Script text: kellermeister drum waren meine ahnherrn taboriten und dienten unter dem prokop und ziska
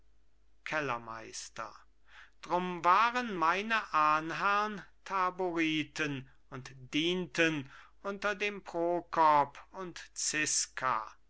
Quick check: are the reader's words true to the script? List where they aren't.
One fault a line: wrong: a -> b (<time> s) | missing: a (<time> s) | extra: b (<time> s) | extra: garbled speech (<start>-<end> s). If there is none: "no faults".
no faults